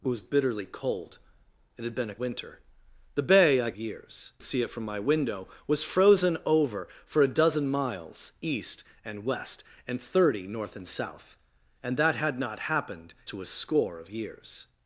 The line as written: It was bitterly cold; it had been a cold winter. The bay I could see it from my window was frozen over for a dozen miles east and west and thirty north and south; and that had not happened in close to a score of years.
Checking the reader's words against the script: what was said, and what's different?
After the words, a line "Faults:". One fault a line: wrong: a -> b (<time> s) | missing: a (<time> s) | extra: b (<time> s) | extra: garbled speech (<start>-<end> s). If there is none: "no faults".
It was bitterly cold; it had been a winter. The bay I years see it from my window was frozen over for a dozen miles east and west and thirty north and south; and that had not happened to a score of years.
Faults:
missing: cold (2.1 s)
wrong: could -> years (3.7 s)
missing: in close (13.1 s)